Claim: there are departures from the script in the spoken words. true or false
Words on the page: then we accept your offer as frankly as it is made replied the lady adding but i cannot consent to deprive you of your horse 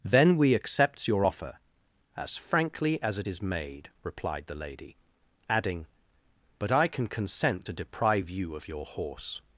true